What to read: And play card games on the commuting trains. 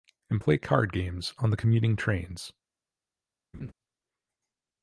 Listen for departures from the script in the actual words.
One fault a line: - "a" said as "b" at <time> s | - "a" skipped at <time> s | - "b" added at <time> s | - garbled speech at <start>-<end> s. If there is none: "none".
none